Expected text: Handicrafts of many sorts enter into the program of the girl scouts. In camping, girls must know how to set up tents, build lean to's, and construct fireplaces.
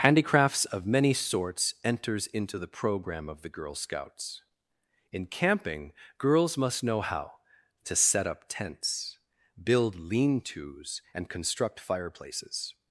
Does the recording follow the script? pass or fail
fail